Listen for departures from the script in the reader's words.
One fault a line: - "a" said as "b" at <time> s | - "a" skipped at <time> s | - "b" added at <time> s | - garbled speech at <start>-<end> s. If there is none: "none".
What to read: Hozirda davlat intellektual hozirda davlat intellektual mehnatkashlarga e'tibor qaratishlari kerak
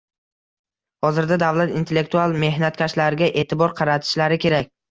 - "hozirda davlat intellektual" skipped at 2.4 s